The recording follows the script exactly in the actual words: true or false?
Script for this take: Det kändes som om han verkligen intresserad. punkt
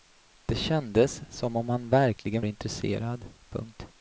true